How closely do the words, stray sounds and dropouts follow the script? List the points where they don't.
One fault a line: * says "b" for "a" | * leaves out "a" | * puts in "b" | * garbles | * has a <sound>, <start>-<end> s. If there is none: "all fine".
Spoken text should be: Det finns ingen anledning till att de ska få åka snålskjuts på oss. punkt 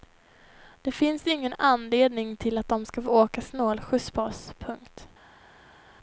all fine